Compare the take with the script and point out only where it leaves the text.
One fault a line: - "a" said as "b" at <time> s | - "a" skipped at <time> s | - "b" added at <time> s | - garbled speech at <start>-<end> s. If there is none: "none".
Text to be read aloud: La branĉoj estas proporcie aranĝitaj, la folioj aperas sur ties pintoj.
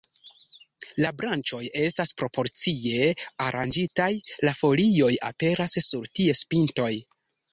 none